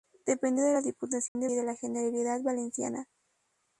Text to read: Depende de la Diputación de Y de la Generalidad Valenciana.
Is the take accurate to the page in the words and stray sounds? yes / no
no